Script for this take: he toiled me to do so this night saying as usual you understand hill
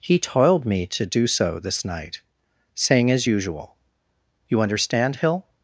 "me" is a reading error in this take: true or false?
false